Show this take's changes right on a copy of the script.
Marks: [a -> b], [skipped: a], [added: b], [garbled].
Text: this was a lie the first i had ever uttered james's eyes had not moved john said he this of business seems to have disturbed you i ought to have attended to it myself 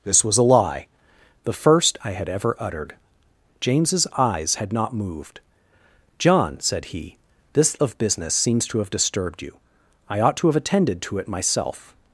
this was a lie the first i had ever uttered james's eyes had not moved john said he this of business seems to have disturbed you i ought to have attended to it myself